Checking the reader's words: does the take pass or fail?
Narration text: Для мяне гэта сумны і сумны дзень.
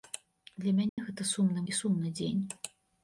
pass